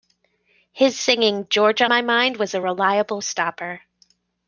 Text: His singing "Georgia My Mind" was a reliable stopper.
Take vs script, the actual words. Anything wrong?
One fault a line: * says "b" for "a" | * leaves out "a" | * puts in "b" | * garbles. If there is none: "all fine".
all fine